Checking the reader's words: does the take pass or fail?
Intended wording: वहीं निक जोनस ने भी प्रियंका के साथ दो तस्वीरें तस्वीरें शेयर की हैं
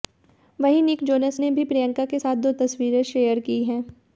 fail